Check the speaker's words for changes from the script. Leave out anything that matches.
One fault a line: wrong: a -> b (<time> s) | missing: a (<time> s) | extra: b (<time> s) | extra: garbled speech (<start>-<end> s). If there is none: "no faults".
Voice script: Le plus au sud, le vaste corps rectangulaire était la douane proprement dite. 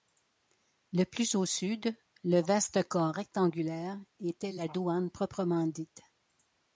no faults